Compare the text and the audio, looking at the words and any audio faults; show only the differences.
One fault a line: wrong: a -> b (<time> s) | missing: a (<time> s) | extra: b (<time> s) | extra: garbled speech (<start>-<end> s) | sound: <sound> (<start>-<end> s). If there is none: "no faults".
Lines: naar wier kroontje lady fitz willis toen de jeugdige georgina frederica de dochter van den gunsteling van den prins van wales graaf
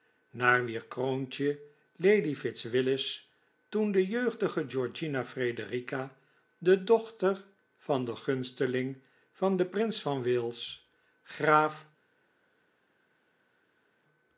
no faults